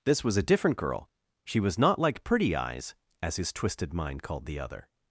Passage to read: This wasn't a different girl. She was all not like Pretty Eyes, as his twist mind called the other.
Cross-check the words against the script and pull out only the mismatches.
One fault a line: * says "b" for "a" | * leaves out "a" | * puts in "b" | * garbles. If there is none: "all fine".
* says "was" for "wasn't"
* leaves out "all"
* says "twisted" for "twist"